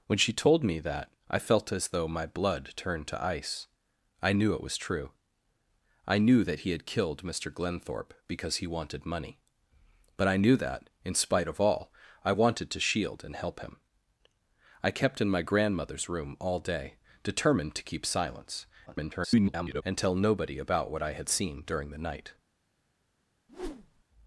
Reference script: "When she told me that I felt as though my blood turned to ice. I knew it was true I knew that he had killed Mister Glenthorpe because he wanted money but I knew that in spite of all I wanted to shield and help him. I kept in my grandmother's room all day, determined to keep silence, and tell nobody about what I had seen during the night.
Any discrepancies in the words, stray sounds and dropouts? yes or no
yes